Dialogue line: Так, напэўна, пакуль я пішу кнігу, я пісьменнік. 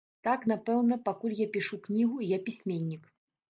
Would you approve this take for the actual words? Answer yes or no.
yes